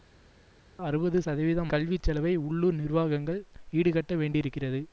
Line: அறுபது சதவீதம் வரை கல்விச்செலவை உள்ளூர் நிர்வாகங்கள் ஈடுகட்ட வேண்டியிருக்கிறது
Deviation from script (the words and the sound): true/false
true